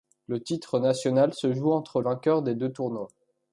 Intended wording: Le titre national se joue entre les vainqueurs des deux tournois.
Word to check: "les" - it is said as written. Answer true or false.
false